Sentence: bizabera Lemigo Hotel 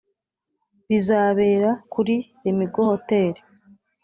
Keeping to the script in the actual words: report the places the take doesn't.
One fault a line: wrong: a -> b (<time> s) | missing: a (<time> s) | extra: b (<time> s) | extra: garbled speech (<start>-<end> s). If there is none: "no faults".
extra: kuri (1.9 s)